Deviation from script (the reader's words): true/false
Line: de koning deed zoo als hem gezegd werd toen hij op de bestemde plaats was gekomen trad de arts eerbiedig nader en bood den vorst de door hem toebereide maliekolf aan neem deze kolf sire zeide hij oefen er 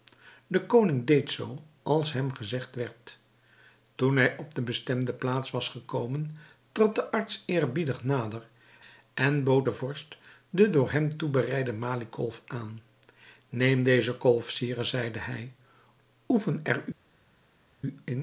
false